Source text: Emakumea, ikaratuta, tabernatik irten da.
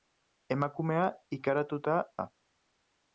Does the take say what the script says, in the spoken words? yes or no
no